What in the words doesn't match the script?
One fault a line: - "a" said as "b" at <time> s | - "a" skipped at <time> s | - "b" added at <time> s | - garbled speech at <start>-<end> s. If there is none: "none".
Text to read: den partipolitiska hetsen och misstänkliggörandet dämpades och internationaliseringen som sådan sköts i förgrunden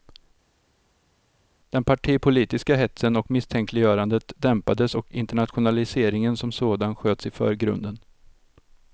none